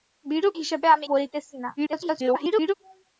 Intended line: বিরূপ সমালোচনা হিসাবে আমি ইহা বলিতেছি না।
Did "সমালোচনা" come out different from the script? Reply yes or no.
yes